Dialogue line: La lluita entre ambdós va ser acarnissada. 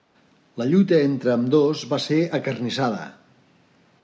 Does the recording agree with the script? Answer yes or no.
yes